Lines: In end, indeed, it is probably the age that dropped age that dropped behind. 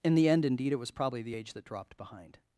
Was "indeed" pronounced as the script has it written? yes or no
yes